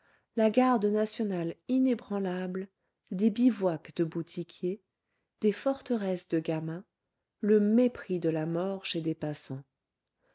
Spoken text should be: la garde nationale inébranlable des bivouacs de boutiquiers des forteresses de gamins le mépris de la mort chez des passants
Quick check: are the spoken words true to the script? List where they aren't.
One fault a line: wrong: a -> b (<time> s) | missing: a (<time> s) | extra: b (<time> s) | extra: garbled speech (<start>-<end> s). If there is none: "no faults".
no faults